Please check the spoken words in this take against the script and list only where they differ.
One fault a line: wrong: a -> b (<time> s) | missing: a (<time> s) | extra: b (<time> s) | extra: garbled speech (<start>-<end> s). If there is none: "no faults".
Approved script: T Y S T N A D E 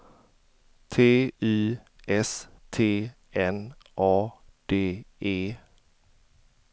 no faults